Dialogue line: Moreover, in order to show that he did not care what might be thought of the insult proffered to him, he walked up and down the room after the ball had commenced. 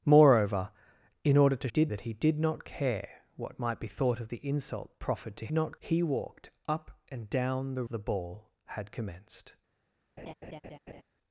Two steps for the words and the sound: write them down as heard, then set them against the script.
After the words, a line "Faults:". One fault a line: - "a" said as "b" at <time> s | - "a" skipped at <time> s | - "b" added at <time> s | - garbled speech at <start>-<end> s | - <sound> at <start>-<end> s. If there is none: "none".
Moreover, in order to did that he did not care what might be thought of the insult proffered to not, he walked up and down the the ball had commenced.
Faults:
- "show" said as "did" at 1.7 s
- "him" said as "not" at 5.5 s
- "room after" skipped at 7.8 s
- laugh at 10.2-11.0 s